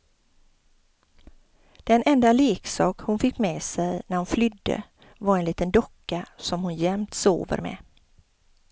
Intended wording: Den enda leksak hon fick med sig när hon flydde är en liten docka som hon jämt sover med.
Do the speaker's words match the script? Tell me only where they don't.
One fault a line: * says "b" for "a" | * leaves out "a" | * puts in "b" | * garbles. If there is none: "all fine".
* says "var" for "är"